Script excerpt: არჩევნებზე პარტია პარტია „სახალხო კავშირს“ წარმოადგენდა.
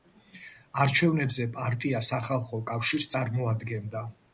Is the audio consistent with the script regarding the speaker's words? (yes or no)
no